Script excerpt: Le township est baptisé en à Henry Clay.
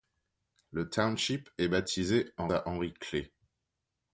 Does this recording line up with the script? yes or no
yes